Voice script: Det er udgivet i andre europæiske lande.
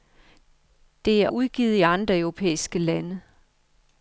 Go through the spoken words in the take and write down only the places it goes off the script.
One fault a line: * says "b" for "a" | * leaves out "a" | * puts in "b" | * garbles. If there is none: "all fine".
all fine